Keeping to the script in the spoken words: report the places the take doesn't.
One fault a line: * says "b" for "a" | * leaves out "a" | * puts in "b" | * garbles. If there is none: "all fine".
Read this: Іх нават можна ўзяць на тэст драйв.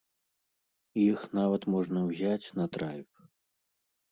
* leaves out "тэст"